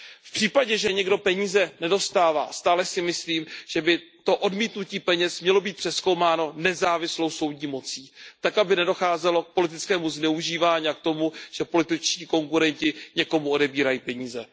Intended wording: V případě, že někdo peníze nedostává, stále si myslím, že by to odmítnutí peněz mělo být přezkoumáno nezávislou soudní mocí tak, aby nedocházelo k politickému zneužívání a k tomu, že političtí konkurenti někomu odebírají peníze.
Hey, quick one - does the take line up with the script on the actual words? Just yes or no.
yes